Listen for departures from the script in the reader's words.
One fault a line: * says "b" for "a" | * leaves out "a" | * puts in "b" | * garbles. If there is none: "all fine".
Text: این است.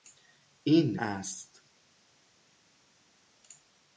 all fine